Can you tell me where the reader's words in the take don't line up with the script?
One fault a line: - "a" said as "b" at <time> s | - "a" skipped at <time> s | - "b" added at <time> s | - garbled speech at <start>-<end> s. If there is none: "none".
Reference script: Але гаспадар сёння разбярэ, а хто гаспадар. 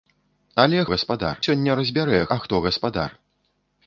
none